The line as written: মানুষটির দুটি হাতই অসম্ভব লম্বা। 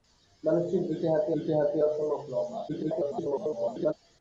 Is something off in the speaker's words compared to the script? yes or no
yes